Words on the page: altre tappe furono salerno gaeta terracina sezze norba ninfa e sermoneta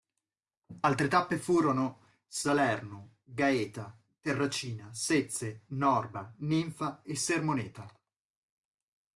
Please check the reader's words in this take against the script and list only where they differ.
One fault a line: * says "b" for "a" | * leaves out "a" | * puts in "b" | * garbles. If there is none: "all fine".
all fine